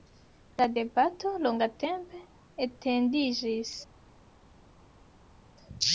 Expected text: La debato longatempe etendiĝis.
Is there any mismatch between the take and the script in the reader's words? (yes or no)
no